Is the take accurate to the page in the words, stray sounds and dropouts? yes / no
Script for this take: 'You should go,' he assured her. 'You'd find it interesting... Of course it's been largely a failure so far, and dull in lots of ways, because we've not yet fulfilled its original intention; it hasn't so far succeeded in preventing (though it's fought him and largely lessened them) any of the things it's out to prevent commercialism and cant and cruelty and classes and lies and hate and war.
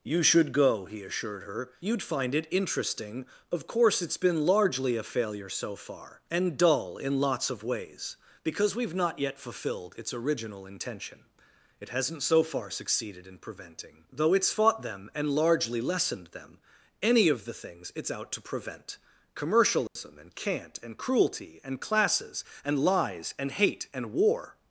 no